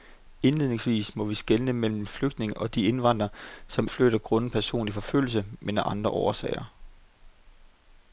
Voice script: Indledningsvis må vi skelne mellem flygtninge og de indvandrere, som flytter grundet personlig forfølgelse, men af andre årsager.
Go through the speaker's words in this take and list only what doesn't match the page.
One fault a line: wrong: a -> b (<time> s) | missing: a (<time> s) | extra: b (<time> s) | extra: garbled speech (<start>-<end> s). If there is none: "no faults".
no faults